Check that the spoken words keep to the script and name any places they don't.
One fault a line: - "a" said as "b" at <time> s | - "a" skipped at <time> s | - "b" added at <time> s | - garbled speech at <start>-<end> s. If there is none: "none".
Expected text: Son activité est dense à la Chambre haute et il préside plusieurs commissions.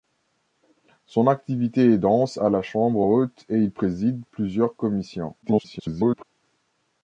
- garbled speech at 5.4-6.2 s